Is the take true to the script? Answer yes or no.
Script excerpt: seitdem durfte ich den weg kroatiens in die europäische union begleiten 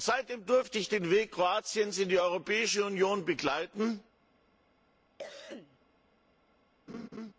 yes